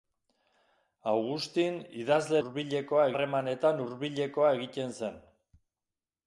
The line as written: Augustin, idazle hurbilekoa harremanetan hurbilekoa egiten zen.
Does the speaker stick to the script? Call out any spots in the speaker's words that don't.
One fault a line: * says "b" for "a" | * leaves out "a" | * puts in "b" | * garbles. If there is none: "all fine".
all fine